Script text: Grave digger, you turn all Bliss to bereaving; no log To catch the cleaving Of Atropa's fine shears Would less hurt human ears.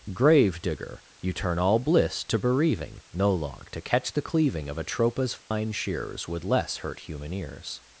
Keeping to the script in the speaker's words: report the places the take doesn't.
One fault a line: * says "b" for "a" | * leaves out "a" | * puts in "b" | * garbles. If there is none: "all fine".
all fine